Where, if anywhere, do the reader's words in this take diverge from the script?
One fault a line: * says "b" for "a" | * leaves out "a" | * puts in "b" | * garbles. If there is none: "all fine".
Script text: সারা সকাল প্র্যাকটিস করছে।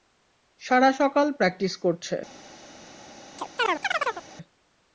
all fine